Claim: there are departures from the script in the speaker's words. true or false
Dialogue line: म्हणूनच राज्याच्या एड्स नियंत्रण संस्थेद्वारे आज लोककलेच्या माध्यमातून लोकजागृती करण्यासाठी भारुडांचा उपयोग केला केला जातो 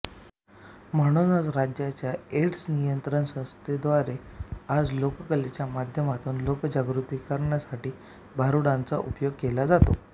true